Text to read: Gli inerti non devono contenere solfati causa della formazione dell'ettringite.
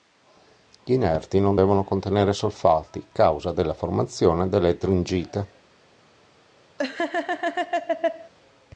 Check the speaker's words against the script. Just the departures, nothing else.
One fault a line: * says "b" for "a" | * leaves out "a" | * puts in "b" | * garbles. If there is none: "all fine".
all fine